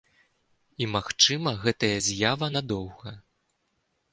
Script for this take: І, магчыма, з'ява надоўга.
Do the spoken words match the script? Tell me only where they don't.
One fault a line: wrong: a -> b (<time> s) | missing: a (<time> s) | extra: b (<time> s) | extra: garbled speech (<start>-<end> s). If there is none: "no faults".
extra: гэтая (1.6 s)